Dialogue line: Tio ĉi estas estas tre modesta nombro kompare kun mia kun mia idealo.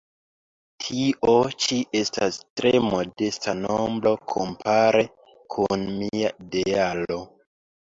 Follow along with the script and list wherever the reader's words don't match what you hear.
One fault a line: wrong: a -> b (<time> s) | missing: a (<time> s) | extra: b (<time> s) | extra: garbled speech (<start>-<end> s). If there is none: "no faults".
missing: estas (2.4 s)
missing: kun mia (6.3 s)